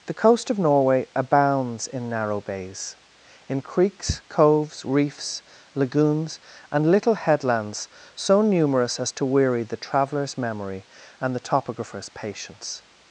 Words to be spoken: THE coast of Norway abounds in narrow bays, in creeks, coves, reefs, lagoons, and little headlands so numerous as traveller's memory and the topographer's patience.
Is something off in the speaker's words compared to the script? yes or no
yes